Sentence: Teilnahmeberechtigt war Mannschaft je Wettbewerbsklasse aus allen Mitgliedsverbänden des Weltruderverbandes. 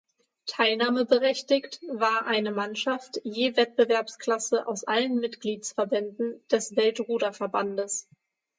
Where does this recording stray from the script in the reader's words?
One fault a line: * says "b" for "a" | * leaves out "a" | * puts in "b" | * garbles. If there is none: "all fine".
* puts in "eine"